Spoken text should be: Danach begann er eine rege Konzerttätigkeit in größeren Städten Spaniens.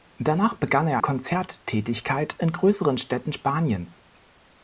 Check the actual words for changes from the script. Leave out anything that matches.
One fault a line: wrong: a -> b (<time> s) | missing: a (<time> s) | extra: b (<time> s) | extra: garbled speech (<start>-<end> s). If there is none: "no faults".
missing: eine rege (1.0 s)